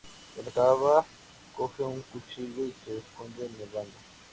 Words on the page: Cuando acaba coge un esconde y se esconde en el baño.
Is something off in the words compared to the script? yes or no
yes